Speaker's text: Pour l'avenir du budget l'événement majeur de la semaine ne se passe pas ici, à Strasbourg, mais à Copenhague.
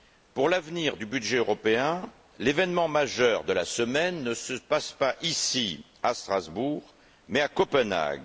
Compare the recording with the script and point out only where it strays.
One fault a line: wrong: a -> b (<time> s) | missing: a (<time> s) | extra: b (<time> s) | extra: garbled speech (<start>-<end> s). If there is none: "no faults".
extra: européen (1.4 s)